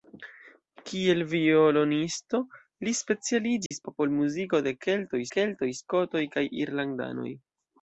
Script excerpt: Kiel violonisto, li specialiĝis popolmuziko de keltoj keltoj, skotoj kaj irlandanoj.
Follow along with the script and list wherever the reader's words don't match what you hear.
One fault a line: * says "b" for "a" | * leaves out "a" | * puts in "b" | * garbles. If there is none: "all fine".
all fine